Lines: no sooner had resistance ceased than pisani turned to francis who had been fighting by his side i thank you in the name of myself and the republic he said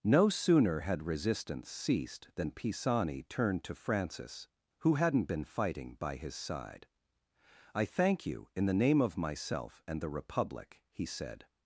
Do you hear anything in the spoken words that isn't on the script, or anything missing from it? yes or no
yes